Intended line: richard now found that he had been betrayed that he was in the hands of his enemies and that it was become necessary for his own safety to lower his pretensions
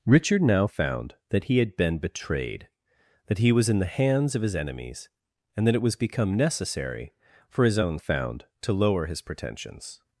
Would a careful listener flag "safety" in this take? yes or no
yes